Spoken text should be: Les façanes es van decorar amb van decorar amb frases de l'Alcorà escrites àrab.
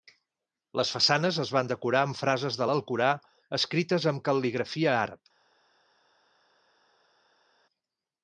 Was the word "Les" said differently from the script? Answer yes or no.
no